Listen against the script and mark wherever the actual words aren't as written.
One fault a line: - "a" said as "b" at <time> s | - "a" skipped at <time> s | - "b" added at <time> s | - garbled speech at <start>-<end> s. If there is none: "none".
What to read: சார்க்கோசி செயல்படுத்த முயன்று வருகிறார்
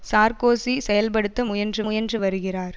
- "முயன்று" added at 1.8 s